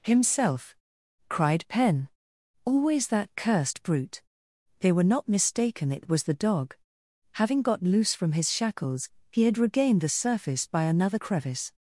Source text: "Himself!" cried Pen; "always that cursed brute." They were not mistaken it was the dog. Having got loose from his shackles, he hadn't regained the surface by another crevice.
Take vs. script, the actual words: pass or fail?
fail